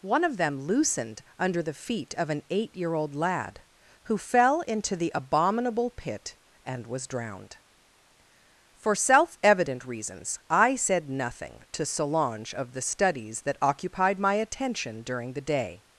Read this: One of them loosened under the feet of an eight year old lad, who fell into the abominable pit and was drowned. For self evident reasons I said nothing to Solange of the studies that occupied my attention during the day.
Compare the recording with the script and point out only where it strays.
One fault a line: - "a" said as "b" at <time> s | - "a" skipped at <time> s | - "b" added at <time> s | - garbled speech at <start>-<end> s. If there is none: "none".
none